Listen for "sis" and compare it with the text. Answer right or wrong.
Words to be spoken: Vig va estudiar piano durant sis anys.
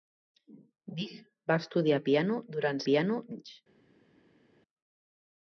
wrong